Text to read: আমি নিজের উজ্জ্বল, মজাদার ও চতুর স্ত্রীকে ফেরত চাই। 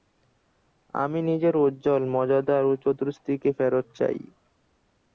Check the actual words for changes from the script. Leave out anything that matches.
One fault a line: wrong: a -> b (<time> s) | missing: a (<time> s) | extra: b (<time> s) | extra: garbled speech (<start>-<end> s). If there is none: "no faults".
no faults